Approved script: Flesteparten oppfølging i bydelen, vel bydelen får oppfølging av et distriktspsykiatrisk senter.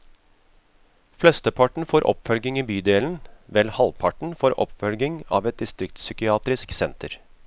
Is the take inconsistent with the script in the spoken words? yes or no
yes